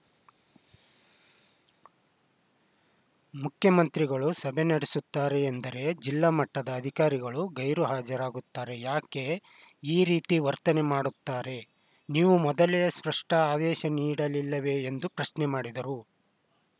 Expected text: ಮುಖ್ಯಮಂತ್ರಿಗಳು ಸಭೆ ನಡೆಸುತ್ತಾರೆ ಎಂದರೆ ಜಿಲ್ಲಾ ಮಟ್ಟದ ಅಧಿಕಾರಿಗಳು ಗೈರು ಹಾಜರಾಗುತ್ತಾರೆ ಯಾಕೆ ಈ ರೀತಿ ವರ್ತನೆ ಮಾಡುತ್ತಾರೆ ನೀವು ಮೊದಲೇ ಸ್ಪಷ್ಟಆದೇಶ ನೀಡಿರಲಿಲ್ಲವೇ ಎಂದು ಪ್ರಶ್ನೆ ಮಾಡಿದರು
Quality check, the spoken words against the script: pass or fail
pass